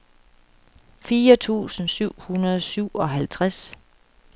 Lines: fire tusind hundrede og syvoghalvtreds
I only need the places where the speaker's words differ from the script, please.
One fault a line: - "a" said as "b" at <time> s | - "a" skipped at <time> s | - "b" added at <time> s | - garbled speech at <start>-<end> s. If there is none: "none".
- "syv" added at 1.9 s